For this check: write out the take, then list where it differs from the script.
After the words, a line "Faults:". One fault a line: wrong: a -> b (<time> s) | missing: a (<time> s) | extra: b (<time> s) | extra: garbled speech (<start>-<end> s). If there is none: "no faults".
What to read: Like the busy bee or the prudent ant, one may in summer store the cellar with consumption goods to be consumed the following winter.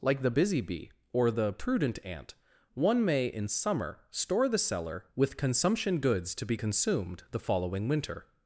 Like the busy bee or the prudent ant, one may in summer store the cellar with consumption goods to be consumed the following winter.
Faults:
no faults